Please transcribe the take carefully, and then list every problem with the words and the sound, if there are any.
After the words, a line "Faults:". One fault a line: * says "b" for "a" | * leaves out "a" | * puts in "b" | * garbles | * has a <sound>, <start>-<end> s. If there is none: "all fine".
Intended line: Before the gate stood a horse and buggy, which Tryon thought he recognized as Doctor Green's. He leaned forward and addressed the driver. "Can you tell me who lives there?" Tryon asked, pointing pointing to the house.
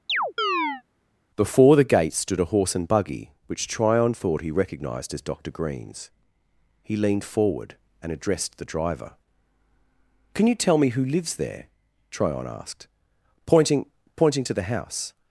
Before the gate stood a horse and buggy, which Tryon thought he recognized as Doctor Green's. He leaned forward and addressed the driver. "Can you tell me who lives there?" Tryon asked, pointing pointing to the house.
Faults:
* has a chirp, 0.1-0.8 s